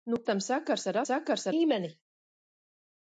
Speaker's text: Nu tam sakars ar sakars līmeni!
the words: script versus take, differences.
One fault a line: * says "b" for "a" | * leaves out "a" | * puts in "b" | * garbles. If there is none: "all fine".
all fine